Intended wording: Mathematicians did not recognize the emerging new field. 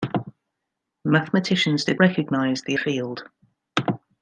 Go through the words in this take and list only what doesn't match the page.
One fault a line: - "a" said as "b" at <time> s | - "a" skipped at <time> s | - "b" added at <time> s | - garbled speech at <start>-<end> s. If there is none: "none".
- "not" skipped at 2.0 s
- "emerging new" skipped at 2.7 s